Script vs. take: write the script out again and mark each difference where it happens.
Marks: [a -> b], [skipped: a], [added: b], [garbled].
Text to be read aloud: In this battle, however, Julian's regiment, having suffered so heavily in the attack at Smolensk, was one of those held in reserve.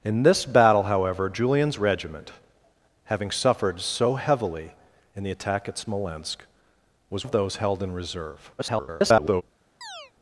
In this battle, however, Julian's regiment, having suffered so heavily in the attack at Smolensk, was [skipped: one] of those held in reserve. [garbled]